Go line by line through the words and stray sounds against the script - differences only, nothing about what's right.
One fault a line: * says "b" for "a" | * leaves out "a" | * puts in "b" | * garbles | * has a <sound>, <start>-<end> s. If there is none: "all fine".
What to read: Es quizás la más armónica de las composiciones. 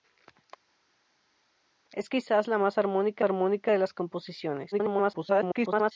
* puts in "armónica"
* garbles